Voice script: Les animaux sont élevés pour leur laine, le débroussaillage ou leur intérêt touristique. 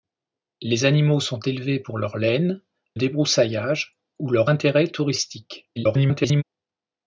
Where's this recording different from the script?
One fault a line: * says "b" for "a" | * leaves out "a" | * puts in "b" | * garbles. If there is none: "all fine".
* leaves out "le"
* garbles